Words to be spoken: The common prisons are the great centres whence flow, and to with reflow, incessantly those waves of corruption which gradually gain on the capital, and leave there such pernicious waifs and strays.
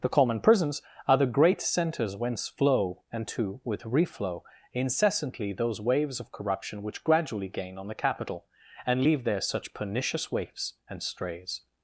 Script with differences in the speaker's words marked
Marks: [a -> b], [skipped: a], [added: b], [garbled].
The common prisons are the great centres whence flow, and to with reflow, incessantly those waves of corruption which gradually gain on the capital, and leave there such pernicious waifs and strays.